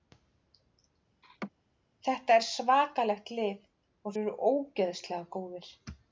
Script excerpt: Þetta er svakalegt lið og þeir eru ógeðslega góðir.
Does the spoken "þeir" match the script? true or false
false